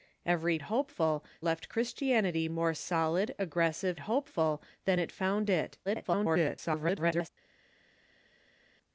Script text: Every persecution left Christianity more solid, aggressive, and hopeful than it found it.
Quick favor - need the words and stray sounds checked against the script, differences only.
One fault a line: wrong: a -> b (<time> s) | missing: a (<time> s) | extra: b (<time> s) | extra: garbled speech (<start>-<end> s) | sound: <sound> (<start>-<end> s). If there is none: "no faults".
wrong: persecution -> hopeful (0.6 s)
missing: and (4.0 s)
extra: garbled speech (5.9-7.3 s)